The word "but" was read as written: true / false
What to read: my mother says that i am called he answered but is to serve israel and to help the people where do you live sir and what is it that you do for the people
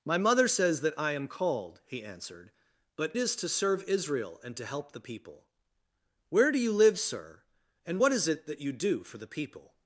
true